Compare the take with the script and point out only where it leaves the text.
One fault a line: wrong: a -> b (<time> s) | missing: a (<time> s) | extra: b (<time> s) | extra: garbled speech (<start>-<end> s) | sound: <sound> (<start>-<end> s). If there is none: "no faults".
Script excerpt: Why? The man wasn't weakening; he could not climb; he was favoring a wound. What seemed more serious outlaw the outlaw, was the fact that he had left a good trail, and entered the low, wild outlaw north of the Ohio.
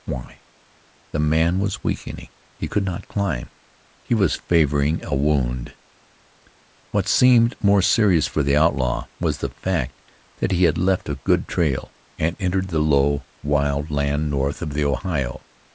wrong: wasn't -> was (1.6 s)
wrong: outlaw -> for (8.2 s)
wrong: outlaw -> land (13.9 s)